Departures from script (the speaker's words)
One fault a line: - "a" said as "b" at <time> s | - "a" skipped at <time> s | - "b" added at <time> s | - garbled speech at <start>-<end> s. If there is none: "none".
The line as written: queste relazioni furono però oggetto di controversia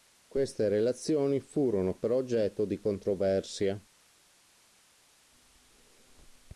none